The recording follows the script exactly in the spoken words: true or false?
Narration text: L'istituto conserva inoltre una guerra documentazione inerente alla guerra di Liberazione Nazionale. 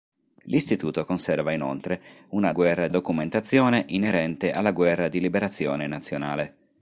true